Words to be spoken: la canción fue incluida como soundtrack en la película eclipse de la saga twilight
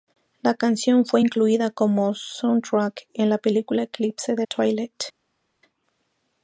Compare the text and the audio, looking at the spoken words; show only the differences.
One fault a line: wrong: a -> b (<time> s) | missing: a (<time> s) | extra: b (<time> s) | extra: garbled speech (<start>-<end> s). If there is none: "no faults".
missing: la saga (4.5 s)